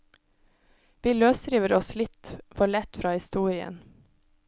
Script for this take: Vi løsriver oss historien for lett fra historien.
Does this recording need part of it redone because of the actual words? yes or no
yes